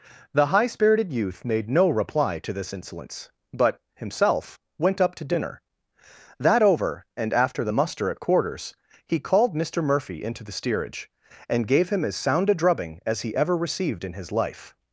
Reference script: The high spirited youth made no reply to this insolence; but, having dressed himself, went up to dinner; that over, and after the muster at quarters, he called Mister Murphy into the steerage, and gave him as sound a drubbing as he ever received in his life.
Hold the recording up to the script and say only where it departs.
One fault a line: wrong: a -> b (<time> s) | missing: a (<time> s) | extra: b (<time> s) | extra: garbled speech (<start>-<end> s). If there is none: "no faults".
missing: having dressed (3.8 s)